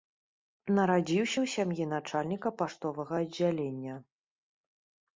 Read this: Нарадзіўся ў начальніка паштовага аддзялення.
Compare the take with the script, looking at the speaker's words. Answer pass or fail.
fail